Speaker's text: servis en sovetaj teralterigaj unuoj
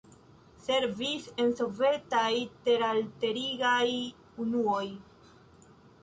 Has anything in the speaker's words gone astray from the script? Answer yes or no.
no